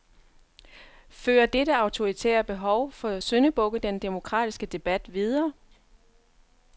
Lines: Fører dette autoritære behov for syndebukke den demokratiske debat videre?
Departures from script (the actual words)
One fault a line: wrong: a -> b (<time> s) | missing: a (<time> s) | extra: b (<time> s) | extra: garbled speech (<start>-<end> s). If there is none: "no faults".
no faults